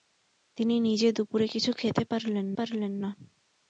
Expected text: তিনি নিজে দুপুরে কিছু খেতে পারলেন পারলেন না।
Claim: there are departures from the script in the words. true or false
false